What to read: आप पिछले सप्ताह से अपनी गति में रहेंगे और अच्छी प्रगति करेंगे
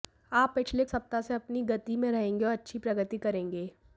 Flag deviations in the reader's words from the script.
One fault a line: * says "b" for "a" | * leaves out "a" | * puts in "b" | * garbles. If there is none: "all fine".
all fine